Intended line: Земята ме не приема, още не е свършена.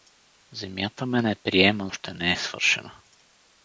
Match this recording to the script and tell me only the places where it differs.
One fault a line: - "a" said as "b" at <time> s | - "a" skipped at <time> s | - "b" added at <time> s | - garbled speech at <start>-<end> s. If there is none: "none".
none